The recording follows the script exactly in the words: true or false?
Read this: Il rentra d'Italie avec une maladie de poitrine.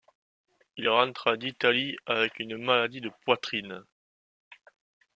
true